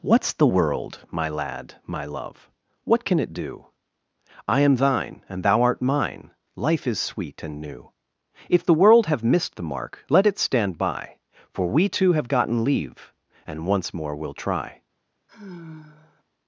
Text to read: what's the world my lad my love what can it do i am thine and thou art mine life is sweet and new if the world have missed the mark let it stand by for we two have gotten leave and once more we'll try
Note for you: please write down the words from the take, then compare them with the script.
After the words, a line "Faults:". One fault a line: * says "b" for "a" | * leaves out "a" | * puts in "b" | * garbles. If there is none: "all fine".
what's the world my lad my love what can it do i am thine and thou art mine life is sweet and new if the world have missed the mark let it stand by for we two have gotten leave and once more we'll try
Faults:
all fine